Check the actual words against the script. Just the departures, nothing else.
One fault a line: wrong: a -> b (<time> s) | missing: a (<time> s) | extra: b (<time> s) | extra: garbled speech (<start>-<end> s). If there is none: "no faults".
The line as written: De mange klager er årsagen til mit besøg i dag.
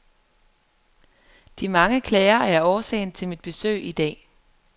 no faults